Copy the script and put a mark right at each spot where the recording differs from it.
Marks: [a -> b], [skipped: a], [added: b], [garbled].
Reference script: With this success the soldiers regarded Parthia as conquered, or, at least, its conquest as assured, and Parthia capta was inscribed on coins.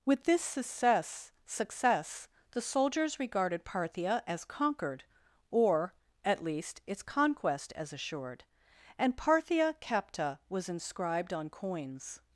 With this success [added: success] the soldiers regarded Parthia as conquered, or, at least, its conquest as assured, and Parthia capta was inscribed on coins.